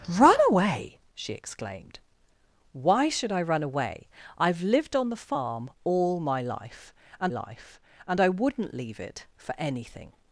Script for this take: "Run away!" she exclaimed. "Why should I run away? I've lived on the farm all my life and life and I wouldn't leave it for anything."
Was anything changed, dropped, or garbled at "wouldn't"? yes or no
no